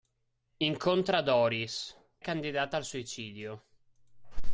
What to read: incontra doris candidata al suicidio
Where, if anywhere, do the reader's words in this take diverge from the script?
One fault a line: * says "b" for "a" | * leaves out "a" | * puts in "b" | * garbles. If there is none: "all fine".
all fine